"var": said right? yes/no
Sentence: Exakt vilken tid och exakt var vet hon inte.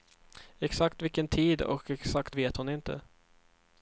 no